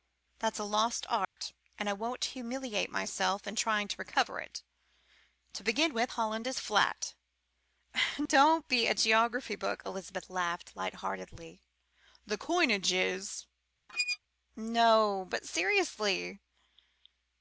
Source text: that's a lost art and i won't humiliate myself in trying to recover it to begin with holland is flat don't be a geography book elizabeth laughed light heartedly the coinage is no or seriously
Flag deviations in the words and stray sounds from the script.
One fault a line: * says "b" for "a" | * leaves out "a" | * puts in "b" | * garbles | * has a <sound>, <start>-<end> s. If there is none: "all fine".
* has a dropout, 1.2-1.4 s
* has a squeak, 13.9-14.2 s
* says "but" for "or"